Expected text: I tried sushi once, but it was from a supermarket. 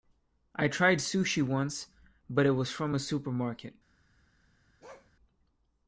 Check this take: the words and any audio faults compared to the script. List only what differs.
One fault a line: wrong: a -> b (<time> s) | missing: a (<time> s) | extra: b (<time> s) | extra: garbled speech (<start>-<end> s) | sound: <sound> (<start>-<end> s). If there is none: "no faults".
sound: bark (4.8-5.1 s)